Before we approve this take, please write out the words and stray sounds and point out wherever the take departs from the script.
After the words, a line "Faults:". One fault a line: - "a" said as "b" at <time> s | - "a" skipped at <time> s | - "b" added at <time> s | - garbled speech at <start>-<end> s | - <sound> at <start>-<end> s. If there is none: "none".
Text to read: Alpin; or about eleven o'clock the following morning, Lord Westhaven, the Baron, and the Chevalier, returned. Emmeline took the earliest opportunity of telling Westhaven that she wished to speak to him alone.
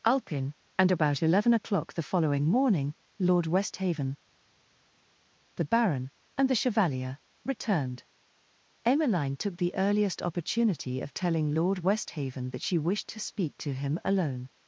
Alpin; and about eleven o'clock the following morning, Lord Westhaven, the Baron, and the Chevalier, returned. Emmeline took the earliest opportunity of telling Lord Westhaven that she wished to speak to him alone.
Faults:
- "or" said as "and" at 0.8 s
- "Lord" added at 11.5 s